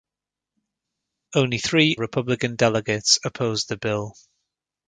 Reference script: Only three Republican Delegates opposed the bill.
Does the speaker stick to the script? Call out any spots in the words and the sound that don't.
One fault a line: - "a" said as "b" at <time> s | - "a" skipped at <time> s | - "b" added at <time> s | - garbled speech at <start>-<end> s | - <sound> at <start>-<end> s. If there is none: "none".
none